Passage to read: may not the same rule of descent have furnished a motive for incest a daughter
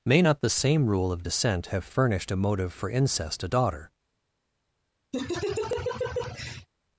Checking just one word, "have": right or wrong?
right